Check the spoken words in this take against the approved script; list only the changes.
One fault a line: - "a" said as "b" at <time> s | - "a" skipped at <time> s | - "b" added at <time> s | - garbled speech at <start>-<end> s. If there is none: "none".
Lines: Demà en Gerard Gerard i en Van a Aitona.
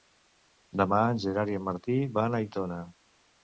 - "Gerard" skipped at 1.5 s
- "Martí" added at 1.7 s